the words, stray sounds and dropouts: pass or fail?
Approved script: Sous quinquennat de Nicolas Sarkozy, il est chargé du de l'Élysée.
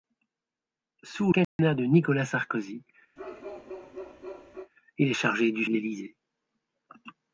fail